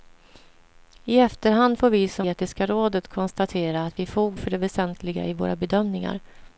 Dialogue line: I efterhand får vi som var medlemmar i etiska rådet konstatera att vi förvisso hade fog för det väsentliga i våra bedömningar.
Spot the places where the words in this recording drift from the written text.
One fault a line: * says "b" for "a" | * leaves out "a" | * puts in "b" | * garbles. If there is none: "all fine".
* leaves out "var medlemmar i"
* leaves out "förvisso hade"